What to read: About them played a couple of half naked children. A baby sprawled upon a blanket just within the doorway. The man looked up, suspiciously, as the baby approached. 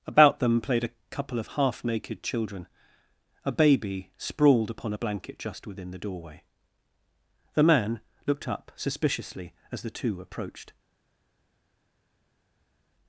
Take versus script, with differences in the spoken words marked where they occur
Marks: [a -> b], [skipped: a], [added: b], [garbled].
About them played a couple of half naked children. A baby sprawled upon a blanket just within the doorway. The man looked up, suspiciously, as the [baby -> two] approached.